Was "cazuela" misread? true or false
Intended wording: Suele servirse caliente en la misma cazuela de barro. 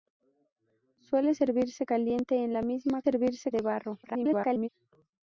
true